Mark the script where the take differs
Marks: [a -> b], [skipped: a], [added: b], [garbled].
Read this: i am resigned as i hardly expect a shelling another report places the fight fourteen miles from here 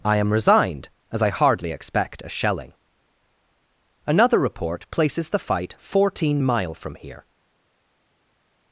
i am resigned as i hardly expect a shelling another report places the fight fourteen [miles -> mile] from here